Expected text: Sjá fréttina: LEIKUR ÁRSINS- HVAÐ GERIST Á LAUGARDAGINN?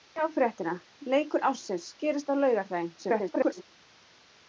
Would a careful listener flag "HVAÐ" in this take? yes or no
yes